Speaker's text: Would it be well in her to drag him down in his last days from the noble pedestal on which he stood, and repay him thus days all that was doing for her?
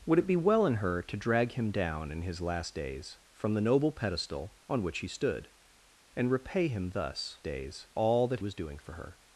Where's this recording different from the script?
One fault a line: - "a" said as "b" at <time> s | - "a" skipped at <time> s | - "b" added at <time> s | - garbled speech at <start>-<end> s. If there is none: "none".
none